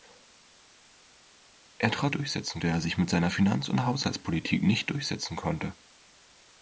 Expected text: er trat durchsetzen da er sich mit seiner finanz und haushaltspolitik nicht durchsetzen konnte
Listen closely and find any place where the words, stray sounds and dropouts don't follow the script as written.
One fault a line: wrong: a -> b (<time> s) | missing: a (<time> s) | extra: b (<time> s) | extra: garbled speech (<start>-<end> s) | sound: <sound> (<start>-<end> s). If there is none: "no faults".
no faults